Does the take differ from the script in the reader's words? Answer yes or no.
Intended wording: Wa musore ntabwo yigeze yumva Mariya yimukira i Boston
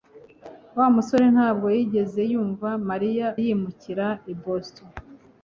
no